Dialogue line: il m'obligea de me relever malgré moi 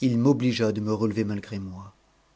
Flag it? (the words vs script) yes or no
no